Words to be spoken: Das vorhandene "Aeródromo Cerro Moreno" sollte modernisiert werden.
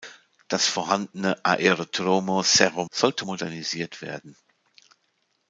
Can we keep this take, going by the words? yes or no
no